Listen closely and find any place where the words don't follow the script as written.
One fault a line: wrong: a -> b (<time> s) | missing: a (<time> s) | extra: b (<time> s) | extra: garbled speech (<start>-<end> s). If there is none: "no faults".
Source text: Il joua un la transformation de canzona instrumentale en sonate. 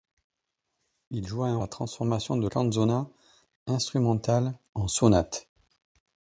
no faults